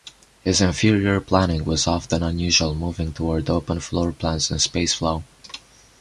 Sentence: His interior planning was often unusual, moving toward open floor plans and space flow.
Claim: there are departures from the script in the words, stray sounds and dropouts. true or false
false